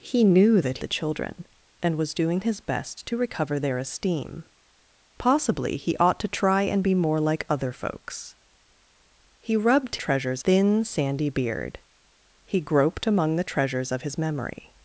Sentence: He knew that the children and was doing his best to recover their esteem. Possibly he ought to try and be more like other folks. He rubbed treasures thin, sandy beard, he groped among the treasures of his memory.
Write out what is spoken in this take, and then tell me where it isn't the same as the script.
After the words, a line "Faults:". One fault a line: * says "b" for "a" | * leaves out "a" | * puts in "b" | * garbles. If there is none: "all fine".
He knew that the children and was doing his best to recover their esteem. Possibly he ought to try and be more like other folks. He rubbed treasures thin, sandy beard, he groped among the treasures of his memory.
Faults:
all fine